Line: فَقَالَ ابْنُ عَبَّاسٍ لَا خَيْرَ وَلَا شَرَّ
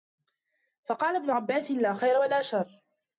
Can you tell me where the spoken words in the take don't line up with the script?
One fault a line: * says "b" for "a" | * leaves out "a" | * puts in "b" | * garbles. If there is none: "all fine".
all fine